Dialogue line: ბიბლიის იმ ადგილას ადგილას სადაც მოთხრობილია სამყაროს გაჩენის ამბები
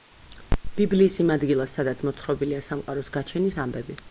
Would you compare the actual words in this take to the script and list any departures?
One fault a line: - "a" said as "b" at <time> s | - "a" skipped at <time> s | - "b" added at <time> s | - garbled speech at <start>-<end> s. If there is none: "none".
- "ადგილას" skipped at 1.8 s